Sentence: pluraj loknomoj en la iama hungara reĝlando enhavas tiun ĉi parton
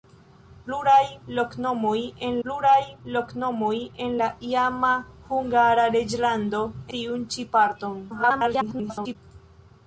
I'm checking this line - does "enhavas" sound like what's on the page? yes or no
no